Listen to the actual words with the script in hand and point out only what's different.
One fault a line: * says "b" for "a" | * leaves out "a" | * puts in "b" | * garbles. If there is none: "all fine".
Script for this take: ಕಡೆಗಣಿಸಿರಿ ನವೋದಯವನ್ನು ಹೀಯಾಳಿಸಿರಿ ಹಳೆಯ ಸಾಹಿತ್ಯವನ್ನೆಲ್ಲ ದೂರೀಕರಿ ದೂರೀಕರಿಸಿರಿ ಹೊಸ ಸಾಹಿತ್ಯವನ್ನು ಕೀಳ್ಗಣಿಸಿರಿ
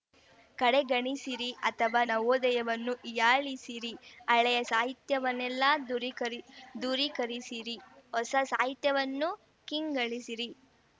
* puts in "ಅಥವಾ"